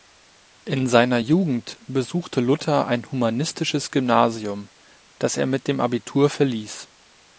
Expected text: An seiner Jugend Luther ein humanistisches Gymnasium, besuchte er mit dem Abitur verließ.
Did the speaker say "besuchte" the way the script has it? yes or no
no